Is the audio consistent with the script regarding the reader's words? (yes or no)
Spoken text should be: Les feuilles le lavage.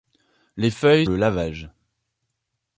yes